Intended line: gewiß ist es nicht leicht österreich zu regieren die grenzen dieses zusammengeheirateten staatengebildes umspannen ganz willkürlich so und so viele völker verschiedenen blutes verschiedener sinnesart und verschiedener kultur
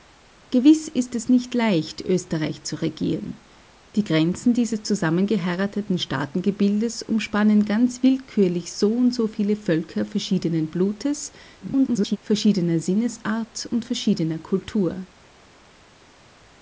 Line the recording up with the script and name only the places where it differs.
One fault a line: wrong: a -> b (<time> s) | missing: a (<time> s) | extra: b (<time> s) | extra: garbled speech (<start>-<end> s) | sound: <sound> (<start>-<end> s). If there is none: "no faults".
extra: garbled speech (11.6-12.2 s)